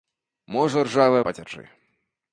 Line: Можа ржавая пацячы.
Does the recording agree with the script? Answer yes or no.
yes